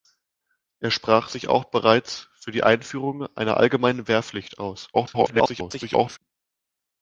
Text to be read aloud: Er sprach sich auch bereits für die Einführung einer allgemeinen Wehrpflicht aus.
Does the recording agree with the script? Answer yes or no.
no